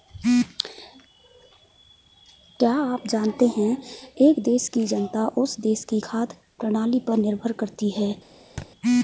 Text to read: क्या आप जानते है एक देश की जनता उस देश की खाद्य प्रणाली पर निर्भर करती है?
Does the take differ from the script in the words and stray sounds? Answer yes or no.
yes